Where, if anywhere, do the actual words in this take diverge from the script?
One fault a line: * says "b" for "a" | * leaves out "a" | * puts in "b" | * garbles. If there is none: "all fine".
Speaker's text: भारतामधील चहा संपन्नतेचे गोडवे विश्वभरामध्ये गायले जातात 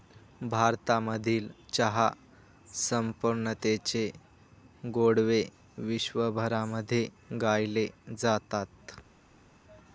all fine